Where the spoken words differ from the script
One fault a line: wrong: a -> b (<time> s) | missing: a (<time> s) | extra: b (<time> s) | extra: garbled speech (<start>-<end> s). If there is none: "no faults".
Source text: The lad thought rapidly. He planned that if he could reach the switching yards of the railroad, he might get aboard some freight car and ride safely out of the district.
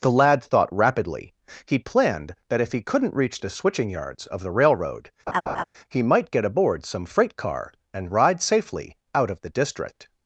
wrong: could -> couldn't (2.8 s)